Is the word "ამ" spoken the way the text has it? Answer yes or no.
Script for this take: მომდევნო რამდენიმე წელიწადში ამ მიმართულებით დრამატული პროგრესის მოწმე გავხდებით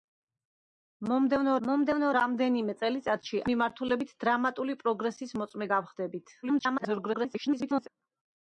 no